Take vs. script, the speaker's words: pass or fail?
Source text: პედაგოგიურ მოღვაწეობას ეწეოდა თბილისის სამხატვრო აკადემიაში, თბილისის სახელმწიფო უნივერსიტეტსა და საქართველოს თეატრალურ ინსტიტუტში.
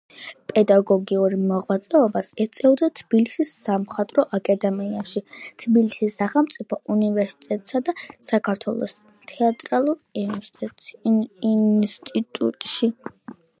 pass